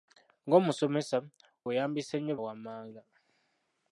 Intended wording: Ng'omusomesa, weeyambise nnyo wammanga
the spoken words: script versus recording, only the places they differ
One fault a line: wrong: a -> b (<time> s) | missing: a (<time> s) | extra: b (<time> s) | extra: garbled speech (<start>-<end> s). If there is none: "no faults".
no faults